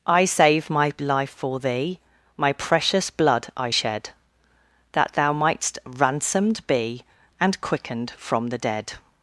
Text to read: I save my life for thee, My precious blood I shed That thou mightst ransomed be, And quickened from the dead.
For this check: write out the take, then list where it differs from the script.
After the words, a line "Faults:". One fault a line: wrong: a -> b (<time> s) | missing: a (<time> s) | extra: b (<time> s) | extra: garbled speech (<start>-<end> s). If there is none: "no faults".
I save my life for thee, My precious blood I shed That thou mightst ransomed be, And quickened from the dead.
Faults:
no faults